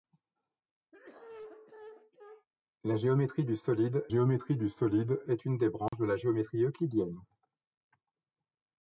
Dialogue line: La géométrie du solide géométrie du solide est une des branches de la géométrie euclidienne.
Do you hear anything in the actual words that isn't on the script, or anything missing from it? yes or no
no